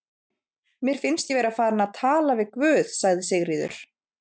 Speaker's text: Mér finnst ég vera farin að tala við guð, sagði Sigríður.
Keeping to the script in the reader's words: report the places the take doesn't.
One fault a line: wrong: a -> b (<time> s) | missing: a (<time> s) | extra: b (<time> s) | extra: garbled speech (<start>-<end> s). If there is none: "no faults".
no faults